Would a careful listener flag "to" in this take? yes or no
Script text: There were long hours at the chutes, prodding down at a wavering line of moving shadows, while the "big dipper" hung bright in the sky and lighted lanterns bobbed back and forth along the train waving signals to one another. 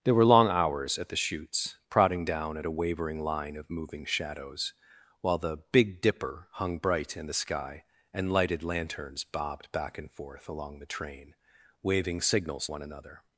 yes